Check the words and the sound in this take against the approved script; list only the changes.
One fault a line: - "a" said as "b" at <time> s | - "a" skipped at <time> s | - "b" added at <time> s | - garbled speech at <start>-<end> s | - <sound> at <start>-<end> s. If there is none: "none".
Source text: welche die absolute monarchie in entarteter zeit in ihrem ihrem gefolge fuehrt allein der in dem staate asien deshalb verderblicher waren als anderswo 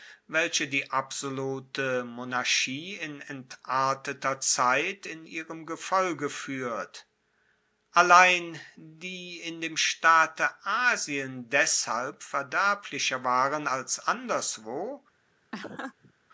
- "ihrem" skipped at 5.6 s
- "der" said as "die" at 8.7 s
- laugh at 15.5-16.1 s